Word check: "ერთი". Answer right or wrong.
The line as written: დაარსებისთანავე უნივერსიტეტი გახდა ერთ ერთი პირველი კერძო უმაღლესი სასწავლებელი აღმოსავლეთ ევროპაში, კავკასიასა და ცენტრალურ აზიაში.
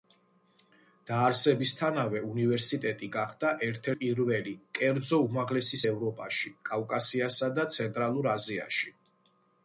wrong